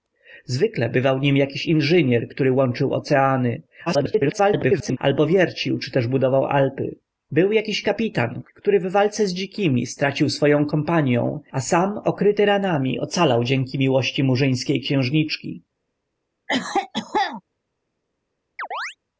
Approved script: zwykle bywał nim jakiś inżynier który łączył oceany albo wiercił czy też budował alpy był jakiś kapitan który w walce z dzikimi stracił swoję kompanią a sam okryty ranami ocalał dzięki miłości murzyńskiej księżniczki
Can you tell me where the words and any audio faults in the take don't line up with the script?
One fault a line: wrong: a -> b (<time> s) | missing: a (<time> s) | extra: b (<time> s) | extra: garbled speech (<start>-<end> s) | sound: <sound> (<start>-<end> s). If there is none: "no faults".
extra: garbled speech (3.9-5.0 s)
sound: cough (16.5-17.4 s)
sound: chirp (18.6-19.0 s)